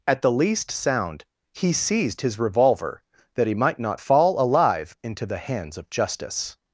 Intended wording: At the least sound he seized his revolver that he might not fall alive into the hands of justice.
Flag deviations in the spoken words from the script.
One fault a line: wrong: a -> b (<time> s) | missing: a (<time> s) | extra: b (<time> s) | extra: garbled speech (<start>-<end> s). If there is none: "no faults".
no faults